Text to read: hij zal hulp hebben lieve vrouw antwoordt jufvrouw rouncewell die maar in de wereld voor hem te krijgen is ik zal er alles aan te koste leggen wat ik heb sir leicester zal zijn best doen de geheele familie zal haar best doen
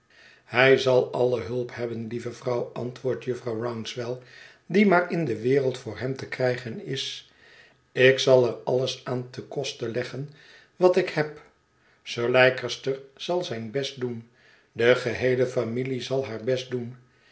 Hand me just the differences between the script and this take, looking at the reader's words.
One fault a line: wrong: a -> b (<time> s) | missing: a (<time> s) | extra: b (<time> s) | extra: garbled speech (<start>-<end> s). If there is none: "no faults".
extra: alle (1.1 s)